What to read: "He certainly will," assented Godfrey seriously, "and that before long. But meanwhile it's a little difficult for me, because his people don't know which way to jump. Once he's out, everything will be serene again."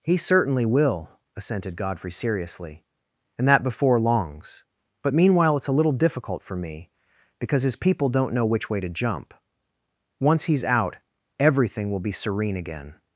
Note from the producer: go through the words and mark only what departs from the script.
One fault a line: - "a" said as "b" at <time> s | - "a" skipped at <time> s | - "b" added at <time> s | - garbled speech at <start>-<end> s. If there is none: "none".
- "long" said as "longs" at 4.0 s